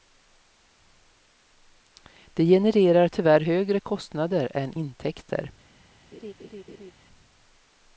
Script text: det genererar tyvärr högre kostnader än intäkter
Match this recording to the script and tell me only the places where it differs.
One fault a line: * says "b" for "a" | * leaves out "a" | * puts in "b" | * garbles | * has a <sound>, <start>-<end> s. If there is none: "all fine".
* has a laugh, 6.1-6.9 s